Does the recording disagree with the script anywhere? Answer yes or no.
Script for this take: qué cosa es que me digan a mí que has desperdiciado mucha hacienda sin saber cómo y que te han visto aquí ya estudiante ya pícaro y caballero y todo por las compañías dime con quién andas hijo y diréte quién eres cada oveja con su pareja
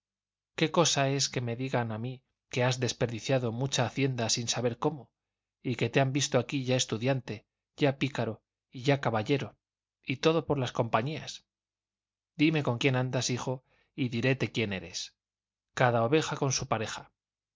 yes